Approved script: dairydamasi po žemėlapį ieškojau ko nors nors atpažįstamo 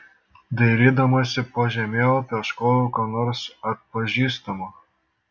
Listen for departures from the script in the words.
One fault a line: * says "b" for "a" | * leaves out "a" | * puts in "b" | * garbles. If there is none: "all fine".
* leaves out "nors"